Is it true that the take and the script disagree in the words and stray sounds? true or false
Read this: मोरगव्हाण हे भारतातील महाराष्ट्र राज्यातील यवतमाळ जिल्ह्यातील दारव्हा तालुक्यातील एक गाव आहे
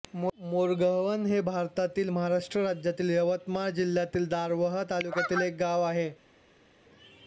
false